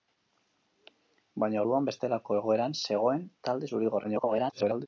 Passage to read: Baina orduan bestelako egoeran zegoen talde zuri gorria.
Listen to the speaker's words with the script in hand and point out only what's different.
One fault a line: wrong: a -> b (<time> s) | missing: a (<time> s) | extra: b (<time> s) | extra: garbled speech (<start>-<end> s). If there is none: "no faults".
extra: garbled speech (4.0-4.9 s)